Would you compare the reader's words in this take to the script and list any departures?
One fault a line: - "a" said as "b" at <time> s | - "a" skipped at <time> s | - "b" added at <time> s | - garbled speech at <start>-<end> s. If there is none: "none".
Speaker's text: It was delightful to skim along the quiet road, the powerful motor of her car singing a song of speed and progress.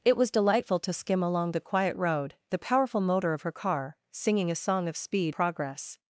- "and" skipped at 5.3 s